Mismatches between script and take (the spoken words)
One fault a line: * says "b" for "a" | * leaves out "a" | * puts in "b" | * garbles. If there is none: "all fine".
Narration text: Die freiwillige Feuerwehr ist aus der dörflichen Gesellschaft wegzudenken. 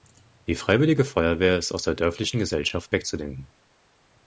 all fine